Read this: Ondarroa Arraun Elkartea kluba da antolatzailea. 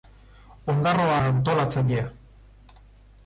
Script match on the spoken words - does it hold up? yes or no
no